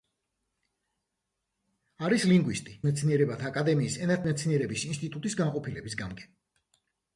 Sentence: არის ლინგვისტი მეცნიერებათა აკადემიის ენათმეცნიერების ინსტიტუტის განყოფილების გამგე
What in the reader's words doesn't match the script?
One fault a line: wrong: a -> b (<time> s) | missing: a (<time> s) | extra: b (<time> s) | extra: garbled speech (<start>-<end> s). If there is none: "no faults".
no faults